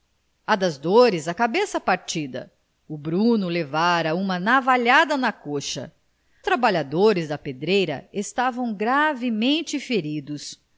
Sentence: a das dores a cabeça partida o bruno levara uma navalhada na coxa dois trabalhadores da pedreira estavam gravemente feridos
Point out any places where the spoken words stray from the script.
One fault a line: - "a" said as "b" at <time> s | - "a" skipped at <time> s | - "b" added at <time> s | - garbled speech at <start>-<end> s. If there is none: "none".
- "dois" skipped at 5.9 s